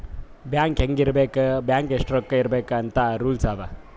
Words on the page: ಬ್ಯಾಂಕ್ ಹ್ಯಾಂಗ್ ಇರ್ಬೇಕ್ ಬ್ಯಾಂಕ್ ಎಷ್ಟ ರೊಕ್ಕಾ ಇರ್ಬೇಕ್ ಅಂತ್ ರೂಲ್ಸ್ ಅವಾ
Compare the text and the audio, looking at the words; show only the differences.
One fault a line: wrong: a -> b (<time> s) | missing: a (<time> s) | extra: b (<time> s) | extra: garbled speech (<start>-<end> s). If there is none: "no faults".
no faults